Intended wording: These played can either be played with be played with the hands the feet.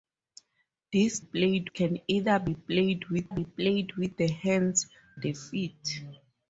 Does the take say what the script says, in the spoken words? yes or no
yes